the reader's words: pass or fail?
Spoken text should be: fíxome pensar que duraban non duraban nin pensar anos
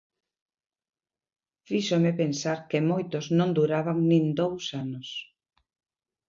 fail